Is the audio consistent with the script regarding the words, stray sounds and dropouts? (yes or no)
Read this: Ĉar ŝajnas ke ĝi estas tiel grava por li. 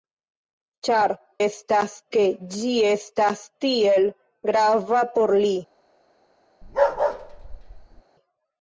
no